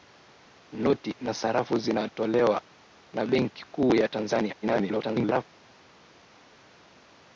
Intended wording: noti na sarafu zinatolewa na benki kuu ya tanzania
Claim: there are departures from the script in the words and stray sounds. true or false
true